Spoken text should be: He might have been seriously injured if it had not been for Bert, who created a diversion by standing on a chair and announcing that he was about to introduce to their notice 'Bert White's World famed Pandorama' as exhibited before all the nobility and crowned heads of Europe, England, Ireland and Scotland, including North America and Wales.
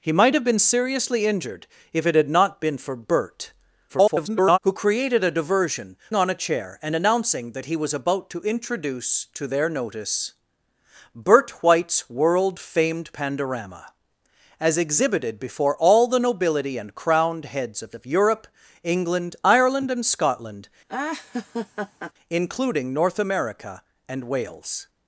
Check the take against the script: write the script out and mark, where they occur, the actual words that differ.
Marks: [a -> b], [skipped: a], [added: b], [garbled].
He might have been seriously injured if it had not been for Bert, [garbled] who created a diversion [skipped: by standing] on a chair and announcing that he was about to introduce to their notice 'Bert White's World famed Pandorama' as exhibited before all the nobility and crowned heads of [added: of] Europe, England, Ireland and Scotland, including North America and Wales.